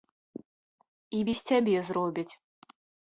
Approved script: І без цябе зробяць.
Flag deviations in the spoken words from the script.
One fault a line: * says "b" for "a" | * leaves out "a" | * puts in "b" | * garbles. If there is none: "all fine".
all fine